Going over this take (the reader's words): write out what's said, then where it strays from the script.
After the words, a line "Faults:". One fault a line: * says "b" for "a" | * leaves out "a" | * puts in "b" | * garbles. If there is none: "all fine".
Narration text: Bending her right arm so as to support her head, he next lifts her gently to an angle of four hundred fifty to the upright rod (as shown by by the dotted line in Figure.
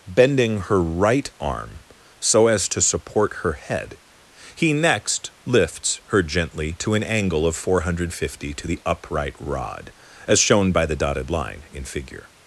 Bending her right arm so as to support her head, he next lifts her gently to an angle of four hundred fifty to the upright rod (as shown by the dotted line in Figure.
Faults:
* leaves out "by"